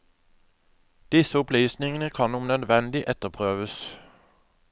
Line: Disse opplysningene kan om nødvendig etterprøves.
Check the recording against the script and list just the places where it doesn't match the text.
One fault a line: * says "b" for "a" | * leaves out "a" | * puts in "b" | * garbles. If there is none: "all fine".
all fine